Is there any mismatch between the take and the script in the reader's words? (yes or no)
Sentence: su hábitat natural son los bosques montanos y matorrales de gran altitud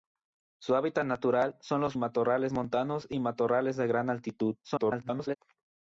yes